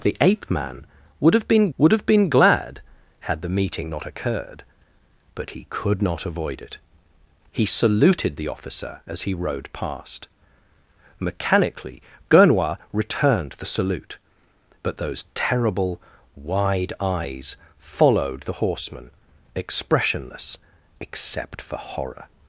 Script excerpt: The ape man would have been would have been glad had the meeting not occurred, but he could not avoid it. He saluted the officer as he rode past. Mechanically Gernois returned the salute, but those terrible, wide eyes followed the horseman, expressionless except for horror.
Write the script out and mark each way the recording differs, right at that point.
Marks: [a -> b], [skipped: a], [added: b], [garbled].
The ape man would have been would have been glad had the meeting not occurred, but he could not avoid it. He saluted the officer as he rode past. Mechanically Gernois returned the salute, but those terrible, wide eyes followed the horseman, expressionless except for horror.